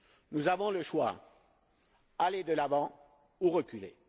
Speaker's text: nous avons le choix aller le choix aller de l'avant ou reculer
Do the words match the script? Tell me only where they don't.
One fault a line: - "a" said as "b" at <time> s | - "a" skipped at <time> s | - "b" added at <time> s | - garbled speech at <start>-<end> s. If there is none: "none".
- "le choix aller" skipped at 2.4 s